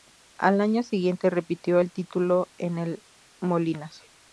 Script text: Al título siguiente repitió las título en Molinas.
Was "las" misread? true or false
true